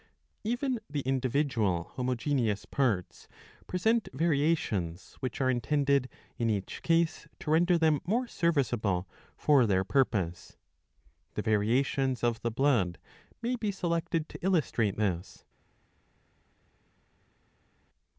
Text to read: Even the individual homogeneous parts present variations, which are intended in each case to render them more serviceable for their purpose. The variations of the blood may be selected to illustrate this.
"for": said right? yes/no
yes